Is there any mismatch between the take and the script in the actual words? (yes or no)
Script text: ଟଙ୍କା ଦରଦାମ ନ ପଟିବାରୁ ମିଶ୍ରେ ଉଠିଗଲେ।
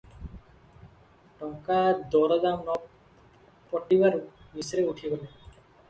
no